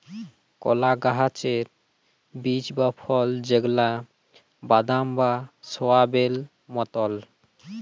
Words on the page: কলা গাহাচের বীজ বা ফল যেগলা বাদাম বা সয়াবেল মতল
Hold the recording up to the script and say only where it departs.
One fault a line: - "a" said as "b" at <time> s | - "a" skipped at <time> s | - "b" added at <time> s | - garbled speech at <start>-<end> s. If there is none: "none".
none